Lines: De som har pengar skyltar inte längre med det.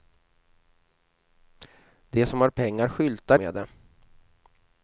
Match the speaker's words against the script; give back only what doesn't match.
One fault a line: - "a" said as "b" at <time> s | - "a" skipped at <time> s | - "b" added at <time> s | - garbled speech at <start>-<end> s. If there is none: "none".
- "inte längre" skipped at 3.4 s